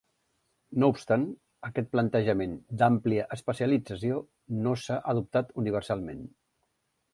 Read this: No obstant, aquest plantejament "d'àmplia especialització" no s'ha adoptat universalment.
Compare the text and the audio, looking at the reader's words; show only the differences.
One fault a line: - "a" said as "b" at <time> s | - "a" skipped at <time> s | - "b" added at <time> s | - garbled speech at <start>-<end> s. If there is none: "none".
none